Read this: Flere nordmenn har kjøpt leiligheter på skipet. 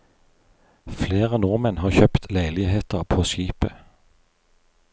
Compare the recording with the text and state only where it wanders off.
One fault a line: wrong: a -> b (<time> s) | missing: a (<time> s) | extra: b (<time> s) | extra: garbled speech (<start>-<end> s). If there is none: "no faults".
no faults